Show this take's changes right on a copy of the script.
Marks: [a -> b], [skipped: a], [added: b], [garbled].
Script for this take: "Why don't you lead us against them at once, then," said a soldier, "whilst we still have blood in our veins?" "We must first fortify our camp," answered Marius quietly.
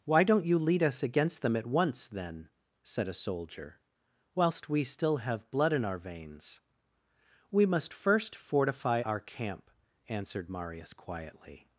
"Why don't you lead us against them at once, then," said a soldier, "whilst we still have blood in our veins?" "We must first fortify our camp," answered Marius quietly.